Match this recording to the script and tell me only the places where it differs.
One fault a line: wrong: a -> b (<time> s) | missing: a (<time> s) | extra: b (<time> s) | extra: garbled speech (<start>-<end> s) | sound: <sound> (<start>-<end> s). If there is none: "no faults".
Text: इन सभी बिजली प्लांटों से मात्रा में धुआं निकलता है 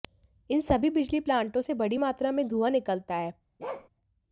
extra: बड़ी (1.7 s)
sound: bark (3.6-3.9 s)